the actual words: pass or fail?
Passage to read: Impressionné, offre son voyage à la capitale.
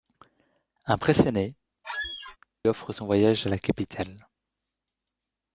pass